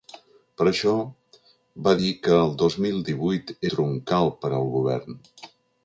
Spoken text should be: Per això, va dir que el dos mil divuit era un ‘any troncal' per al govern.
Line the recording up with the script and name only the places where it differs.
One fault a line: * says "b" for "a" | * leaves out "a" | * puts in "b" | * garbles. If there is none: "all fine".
* leaves out "era un any"